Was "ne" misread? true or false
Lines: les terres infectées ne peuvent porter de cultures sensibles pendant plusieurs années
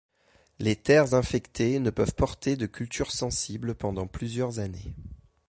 false